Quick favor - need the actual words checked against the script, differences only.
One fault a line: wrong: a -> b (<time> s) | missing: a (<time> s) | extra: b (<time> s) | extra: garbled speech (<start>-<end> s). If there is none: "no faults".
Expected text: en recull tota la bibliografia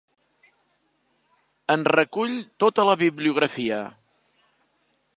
no faults